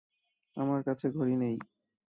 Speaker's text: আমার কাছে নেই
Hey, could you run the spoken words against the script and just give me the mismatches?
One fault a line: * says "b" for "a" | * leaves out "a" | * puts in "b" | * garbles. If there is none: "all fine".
* puts in "ঘড়ি"